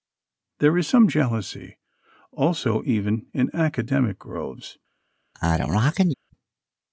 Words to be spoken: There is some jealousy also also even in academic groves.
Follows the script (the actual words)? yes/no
no